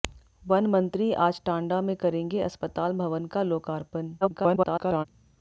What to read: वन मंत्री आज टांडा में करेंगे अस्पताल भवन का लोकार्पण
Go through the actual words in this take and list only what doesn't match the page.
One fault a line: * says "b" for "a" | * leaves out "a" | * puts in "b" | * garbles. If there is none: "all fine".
* garbles